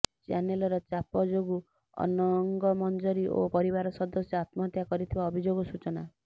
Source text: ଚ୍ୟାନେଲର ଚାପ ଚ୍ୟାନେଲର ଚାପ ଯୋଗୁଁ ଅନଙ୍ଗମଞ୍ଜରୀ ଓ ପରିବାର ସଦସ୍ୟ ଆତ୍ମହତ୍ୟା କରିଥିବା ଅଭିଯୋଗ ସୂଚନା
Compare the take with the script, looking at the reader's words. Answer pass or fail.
fail